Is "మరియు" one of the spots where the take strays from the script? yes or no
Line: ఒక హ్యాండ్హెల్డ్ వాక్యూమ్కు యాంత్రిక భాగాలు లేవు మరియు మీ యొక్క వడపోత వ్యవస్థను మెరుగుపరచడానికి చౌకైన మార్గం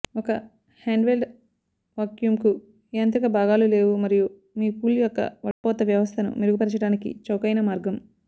no